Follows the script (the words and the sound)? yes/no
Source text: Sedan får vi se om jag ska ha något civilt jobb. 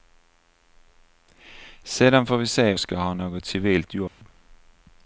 no